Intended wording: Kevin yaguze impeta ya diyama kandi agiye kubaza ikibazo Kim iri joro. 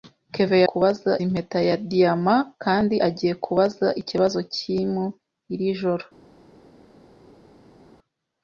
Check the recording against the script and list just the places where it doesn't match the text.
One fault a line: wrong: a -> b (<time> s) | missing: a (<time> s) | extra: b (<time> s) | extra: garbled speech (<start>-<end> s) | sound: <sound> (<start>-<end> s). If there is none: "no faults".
wrong: yaguze -> kubaza (0.7 s)